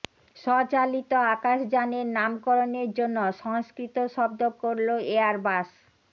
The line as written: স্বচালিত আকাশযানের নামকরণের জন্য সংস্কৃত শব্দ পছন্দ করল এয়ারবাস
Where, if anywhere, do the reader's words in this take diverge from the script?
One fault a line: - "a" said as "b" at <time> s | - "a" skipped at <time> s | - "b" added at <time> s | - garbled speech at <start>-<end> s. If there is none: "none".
- "পছন্দ" skipped at 4.4 s